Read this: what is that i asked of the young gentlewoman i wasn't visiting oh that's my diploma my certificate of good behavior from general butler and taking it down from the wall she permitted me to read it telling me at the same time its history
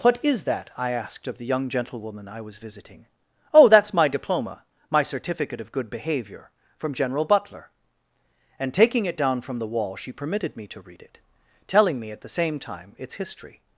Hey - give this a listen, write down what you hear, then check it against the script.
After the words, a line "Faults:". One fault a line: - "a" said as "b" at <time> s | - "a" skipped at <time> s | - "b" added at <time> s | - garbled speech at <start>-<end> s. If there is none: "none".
what is that i asked of the young gentlewoman i was visiting oh that's my diploma my certificate of good behavior from general butler and taking it down from the wall she permitted me to read it telling me at the same time its history
Faults:
- "wasn't" said as "was" at 2.4 s